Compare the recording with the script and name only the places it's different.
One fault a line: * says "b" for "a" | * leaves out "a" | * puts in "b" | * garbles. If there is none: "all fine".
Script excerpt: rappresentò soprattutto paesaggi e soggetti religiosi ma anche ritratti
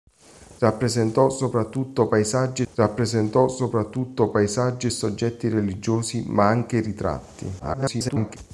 * puts in "rappresentò soprattutto paesaggi"
* garbles